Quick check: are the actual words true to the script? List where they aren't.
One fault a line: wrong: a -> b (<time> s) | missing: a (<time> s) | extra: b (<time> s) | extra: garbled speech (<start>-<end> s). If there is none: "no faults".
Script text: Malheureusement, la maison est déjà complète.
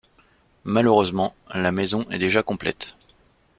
no faults